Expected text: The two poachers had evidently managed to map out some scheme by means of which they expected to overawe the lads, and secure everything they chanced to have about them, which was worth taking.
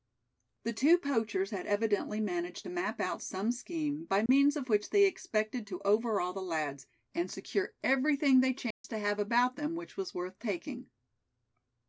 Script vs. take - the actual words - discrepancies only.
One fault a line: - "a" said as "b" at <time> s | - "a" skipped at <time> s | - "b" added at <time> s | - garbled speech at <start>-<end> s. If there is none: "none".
none